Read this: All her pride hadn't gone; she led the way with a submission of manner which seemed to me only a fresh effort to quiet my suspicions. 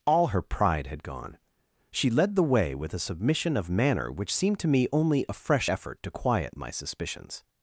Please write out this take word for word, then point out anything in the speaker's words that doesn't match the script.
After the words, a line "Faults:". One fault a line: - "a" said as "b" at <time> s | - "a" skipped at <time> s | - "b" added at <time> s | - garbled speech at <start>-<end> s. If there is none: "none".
All her pride had gone; she led the way with a submission of manner which seemed to me only a fresh effort to quiet my suspicions.
Faults:
- "hadn't" said as "had" at 0.9 s